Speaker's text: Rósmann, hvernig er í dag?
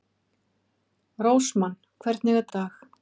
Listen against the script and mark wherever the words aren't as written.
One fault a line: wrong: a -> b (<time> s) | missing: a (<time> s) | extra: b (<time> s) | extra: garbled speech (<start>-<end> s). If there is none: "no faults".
no faults